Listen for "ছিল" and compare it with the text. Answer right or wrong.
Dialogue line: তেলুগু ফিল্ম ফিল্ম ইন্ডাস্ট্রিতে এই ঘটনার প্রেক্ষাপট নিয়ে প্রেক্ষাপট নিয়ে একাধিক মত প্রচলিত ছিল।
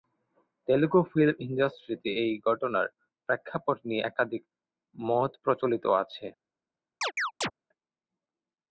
wrong